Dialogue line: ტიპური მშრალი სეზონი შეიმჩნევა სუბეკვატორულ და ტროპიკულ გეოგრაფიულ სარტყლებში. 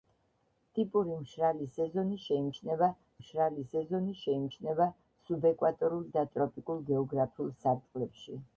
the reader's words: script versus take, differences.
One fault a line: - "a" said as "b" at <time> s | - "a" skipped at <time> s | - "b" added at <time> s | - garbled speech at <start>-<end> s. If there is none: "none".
- "მშრალი სეზონი შეიმჩნევა" added at 3.2 s